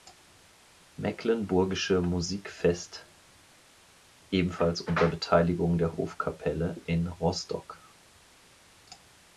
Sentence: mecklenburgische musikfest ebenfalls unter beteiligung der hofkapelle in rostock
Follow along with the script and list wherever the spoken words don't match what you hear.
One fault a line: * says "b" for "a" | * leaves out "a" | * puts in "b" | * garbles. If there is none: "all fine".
all fine